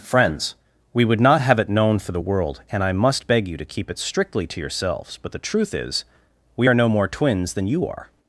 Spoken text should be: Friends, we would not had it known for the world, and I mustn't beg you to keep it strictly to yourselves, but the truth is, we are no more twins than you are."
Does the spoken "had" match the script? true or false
false